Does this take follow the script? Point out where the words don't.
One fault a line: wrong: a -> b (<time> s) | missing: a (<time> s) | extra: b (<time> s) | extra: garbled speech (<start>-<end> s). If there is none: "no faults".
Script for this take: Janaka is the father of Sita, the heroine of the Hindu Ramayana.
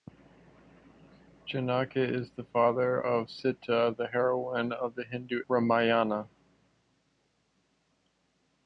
no faults